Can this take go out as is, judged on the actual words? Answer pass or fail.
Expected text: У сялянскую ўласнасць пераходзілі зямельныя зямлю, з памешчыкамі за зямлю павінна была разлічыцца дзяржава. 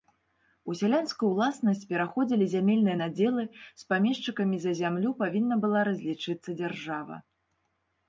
fail